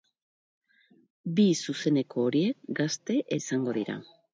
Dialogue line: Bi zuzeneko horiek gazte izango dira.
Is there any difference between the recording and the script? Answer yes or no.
no